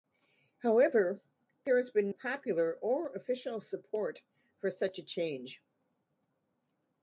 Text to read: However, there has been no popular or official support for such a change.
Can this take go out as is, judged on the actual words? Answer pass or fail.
fail